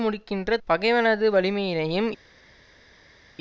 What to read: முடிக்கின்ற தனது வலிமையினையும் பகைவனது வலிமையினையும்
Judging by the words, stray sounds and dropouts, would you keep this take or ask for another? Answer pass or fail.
fail